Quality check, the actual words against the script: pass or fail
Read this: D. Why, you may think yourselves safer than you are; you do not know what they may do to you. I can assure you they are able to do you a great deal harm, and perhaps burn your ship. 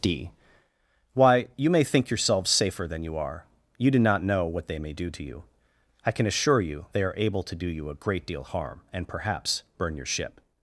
pass